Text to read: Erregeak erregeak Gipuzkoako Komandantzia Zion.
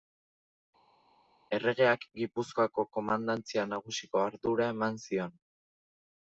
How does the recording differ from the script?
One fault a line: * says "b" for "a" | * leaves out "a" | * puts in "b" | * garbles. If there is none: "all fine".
* leaves out "erregeak"
* puts in "Nagusiko ardura eman"